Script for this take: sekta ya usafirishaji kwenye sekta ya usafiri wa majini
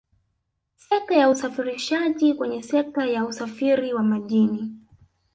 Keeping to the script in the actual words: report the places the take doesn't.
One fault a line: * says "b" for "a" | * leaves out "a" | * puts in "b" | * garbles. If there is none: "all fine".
all fine